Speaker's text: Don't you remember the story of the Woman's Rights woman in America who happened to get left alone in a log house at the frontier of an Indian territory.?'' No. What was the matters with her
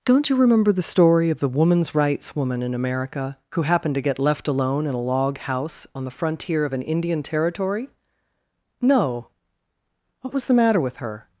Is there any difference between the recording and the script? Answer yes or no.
yes